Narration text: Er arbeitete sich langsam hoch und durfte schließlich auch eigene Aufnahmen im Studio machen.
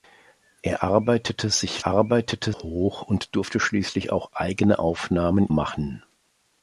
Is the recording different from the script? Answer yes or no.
yes